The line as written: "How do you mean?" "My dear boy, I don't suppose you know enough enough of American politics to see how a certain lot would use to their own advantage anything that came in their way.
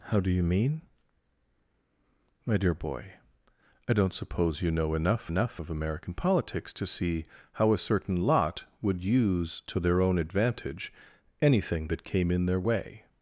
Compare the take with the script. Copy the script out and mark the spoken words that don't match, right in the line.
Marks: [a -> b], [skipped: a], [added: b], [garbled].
"How do you mean?" "My dear boy, I don't suppose you know enough enough of American politics to see how a certain lot would use to their own advantage anything that came in their way.